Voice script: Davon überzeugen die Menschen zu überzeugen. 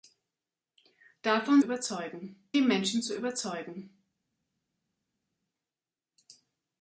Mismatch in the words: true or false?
false